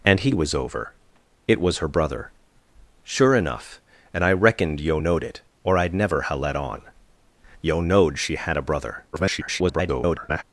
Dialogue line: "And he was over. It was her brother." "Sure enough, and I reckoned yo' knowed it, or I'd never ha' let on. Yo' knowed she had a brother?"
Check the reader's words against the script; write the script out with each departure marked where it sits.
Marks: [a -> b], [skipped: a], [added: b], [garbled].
"And he was over. It was her brother." "Sure enough, and I reckoned yo' knowed it, or I'd never ha' let on. Yo' knowed she had a brother?" [garbled]